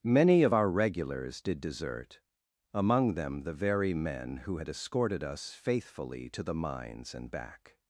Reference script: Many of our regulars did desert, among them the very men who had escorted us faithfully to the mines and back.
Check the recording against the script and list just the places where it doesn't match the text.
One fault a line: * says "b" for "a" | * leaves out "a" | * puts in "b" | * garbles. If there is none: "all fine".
all fine